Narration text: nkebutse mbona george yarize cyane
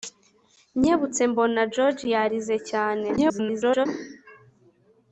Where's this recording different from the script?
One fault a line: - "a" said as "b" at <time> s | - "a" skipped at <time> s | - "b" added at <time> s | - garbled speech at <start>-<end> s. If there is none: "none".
- garbled speech at 3.2-3.9 s